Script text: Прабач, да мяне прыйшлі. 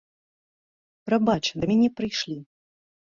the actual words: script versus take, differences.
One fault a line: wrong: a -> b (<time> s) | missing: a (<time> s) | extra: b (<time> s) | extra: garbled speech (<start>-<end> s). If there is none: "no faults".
no faults